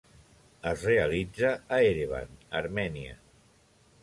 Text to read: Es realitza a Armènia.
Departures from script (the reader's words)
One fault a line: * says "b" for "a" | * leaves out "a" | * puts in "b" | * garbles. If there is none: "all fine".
* puts in "Erevan"